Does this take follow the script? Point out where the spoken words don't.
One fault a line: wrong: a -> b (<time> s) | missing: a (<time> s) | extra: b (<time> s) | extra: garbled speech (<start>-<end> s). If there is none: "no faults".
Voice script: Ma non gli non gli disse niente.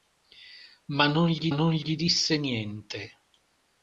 no faults